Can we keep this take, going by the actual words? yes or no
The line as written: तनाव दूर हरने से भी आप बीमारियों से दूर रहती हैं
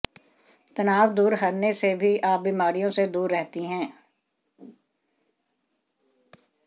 yes